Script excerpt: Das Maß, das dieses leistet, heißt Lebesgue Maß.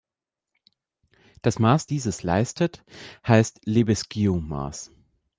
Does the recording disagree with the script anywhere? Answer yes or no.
yes